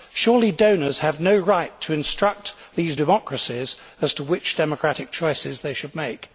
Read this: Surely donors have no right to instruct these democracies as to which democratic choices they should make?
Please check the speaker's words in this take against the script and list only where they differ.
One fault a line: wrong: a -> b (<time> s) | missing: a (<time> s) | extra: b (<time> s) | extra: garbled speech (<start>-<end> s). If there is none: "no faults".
no faults